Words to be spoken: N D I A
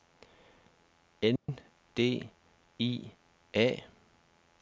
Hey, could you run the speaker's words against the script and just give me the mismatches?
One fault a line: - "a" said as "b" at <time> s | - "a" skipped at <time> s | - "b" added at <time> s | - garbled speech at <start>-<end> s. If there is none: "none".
none